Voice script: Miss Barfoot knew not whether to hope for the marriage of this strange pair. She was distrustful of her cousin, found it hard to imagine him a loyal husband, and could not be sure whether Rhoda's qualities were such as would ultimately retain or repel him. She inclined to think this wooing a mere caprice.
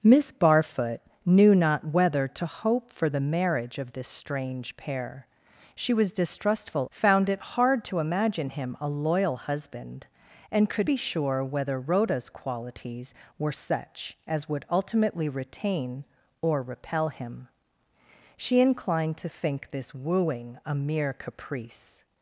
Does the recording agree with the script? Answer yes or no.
no